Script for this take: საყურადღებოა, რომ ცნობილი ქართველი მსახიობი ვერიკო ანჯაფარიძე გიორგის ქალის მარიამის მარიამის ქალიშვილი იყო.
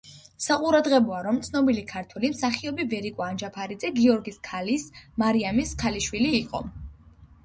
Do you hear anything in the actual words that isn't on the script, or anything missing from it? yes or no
yes